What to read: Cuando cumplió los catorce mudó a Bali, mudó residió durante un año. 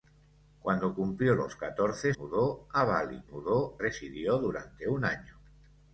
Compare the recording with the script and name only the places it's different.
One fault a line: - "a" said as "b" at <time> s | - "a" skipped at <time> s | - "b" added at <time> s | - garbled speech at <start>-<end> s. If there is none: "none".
none